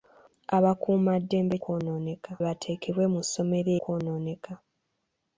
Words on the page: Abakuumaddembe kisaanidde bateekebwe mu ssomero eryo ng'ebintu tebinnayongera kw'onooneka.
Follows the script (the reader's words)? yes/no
no